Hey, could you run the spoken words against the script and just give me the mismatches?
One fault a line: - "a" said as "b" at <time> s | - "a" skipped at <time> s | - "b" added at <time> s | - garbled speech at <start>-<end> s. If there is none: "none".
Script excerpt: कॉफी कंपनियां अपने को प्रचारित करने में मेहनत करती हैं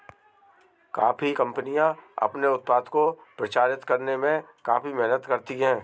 - "उत्पाद" added at 2.5 s
- "काफी" added at 4.6 s